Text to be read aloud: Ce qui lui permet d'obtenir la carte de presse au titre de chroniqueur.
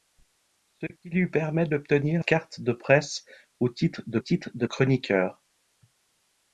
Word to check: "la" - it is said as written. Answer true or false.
false